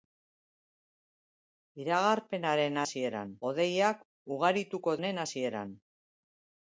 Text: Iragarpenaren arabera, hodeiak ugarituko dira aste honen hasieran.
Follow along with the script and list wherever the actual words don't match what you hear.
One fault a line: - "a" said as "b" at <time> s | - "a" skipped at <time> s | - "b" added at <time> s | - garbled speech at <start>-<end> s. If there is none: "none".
- "arabera" said as "hasieran" at 2.8 s
- "dira aste" skipped at 5.0 s